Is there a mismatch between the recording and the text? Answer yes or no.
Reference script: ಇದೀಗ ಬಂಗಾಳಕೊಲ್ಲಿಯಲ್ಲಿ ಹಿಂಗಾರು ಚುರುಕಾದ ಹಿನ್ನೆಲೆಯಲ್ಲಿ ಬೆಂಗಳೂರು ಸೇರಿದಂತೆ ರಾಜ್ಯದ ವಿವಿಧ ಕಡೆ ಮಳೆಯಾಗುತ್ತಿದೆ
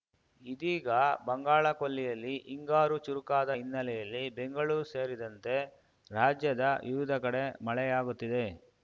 no